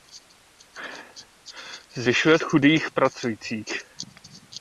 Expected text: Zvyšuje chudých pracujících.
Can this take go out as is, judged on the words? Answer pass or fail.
pass